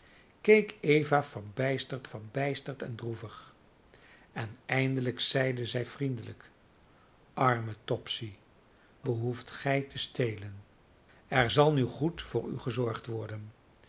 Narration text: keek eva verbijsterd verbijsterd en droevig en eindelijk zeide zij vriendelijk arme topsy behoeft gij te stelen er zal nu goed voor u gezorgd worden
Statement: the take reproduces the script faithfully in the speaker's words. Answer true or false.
true